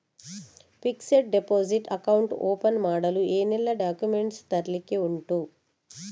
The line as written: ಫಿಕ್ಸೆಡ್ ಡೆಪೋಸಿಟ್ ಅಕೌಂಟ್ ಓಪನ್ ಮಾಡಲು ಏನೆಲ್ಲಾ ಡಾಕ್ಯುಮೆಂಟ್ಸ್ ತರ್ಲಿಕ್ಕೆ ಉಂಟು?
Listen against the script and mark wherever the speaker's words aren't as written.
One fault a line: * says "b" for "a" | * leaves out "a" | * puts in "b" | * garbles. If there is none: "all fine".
all fine